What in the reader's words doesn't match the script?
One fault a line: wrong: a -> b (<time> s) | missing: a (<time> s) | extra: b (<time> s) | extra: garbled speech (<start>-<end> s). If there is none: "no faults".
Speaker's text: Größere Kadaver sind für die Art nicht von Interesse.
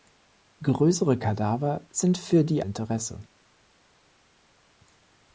missing: Art nicht von (2.6 s)